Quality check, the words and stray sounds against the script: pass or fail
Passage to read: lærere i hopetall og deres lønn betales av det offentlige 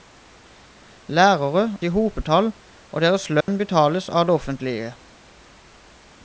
fail